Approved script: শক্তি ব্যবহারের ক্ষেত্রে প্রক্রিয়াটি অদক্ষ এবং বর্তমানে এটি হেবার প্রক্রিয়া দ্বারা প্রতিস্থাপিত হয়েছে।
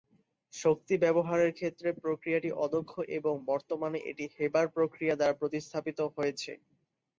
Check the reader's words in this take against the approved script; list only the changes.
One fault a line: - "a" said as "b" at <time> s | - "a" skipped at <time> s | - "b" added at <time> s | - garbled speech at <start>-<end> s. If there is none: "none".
none